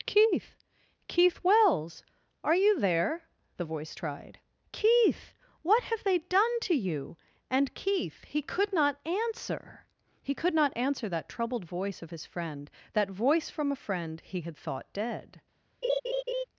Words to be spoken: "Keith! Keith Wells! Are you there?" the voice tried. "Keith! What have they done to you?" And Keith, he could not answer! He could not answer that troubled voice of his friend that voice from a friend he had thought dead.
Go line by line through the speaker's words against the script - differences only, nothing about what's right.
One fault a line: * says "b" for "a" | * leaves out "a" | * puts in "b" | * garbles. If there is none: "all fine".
all fine